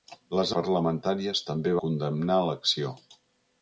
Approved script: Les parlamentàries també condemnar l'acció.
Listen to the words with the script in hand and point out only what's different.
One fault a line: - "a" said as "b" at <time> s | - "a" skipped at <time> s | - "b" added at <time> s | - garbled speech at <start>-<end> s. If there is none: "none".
none